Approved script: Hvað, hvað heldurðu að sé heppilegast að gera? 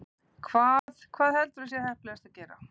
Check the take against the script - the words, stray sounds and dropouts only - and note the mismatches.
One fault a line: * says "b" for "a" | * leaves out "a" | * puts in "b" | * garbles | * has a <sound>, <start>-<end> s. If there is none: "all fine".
* has a dropout, 0.8-0.9 s